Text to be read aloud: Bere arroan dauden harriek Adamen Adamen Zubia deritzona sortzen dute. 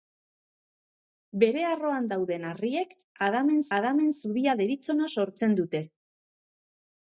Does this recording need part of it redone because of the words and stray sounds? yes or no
no